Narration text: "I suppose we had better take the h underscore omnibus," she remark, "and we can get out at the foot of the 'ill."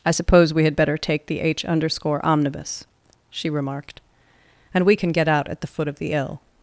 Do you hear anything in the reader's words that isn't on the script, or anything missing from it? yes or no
yes